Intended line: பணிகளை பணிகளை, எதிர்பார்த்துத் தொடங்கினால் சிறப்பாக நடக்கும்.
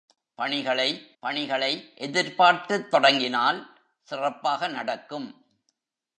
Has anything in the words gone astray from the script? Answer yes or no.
no